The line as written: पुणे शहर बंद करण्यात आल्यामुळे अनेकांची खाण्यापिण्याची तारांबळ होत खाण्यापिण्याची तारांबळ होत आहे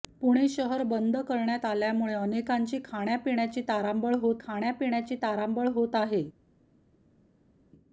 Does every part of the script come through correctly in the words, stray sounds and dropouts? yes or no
yes